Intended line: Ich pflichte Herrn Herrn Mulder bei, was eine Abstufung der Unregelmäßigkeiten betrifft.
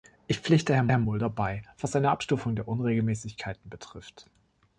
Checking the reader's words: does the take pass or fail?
pass